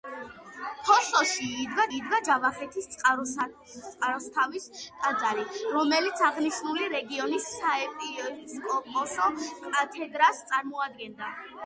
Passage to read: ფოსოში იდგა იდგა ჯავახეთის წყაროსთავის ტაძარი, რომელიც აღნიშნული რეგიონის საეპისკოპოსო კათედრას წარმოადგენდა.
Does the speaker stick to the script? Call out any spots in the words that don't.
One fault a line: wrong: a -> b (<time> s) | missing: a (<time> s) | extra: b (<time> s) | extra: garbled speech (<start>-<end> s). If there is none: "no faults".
no faults